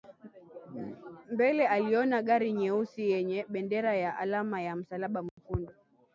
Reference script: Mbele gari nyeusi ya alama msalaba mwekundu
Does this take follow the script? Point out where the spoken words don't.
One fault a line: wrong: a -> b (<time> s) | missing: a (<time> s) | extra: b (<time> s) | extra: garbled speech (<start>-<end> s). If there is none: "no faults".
extra: aliona (1.7 s)
extra: yenye bendera (3.1 s)
extra: ya (4.6 s)